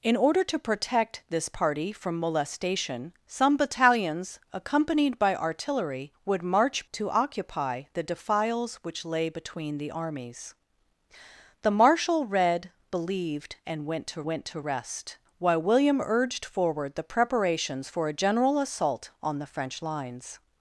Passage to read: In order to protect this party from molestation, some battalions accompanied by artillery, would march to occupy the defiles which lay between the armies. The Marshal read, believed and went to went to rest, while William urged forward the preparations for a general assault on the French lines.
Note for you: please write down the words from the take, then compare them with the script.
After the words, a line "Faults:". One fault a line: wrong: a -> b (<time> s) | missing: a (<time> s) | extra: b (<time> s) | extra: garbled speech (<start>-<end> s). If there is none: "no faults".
In order to protect this party from molestation, some battalions accompanied by artillery, would march to occupy the defiles which lay between the armies. The Marshal read, believed and went to went to rest, while William urged forward the preparations for a general assault on the French lines.
Faults:
no faults